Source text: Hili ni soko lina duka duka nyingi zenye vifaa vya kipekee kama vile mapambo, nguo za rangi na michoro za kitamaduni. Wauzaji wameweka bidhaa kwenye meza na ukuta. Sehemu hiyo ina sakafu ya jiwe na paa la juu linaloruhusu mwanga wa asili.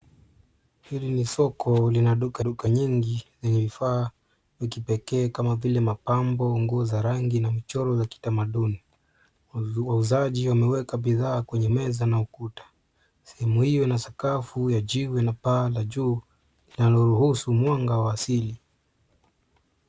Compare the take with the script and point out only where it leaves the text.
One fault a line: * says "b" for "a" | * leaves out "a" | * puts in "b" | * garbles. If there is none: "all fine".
all fine